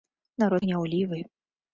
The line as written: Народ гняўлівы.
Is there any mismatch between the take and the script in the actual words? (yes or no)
no